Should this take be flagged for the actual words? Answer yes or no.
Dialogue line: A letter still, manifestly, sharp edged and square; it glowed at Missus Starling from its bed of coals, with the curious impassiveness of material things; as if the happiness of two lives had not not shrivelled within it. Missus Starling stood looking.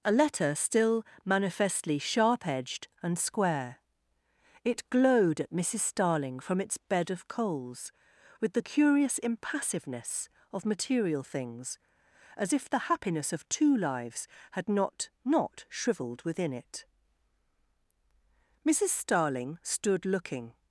no